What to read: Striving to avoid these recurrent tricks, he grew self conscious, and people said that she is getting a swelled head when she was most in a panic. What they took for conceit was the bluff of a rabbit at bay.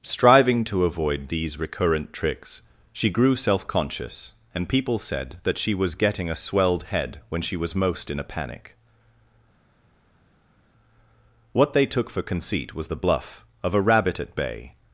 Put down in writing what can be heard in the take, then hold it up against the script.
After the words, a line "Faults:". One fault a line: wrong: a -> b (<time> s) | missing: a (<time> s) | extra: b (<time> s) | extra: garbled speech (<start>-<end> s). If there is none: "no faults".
Striving to avoid these recurrent tricks, she grew self conscious, and people said that she was getting a swelled head when she was most in a panic. What they took for conceit was the bluff of a rabbit at bay.
Faults:
wrong: he -> she (2.9 s)
wrong: is -> was (5.8 s)